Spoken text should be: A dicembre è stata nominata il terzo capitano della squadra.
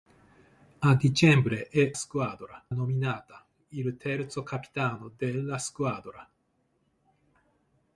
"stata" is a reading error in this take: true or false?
true